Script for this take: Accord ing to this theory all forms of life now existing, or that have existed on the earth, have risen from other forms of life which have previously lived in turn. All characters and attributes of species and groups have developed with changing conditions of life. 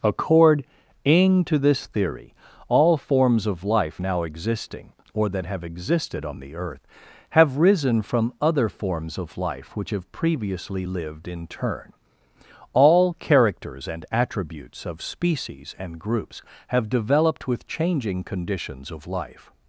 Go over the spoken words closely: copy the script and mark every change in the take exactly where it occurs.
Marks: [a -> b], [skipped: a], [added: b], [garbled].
Accord ing to this theory all forms of life now existing, or that have existed on the earth, have risen from other forms of life which have previously lived in turn. All characters and attributes of species and groups have developed with changing conditions of life.